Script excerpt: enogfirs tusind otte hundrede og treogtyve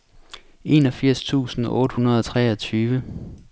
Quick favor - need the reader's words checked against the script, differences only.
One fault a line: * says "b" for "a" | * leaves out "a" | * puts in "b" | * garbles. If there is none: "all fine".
all fine